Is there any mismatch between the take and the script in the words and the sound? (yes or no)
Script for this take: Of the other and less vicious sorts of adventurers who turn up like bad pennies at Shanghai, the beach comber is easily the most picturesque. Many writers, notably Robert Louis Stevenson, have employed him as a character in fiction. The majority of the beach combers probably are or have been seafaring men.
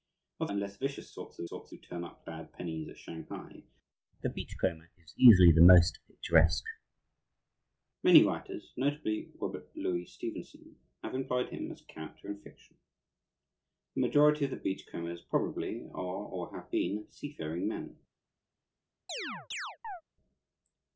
yes